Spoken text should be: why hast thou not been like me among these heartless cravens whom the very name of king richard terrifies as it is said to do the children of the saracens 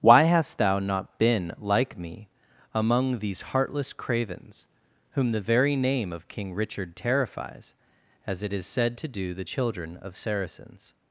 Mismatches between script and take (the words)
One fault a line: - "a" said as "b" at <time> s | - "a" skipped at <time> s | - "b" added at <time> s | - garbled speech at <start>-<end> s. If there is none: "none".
- "the" skipped at 10.1 s